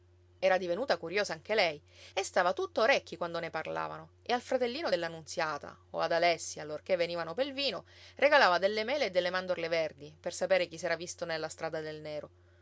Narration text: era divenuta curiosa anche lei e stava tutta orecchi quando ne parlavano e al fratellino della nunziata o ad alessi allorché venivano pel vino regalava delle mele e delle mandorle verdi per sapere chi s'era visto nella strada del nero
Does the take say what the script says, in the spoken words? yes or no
yes